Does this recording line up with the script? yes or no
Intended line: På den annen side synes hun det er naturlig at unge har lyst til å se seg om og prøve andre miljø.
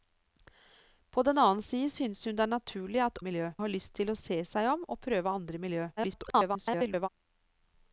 no